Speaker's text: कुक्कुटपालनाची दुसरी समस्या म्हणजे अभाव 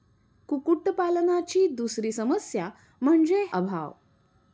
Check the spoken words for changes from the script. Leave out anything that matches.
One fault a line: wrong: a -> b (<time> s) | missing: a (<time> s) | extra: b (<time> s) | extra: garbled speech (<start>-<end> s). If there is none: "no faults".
no faults